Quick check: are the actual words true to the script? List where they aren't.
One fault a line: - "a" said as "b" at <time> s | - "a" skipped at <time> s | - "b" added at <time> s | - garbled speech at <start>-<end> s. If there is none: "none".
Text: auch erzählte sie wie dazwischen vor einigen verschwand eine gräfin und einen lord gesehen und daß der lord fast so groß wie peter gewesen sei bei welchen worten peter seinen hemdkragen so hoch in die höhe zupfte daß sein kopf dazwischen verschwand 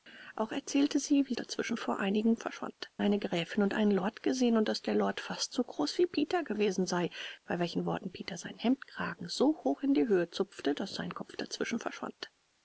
none